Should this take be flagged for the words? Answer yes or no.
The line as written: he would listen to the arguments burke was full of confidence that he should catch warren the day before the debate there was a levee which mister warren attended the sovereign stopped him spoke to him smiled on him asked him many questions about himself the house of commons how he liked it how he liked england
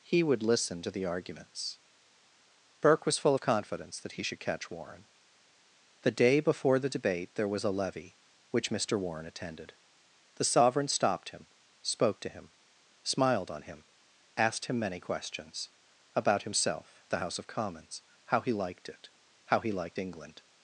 no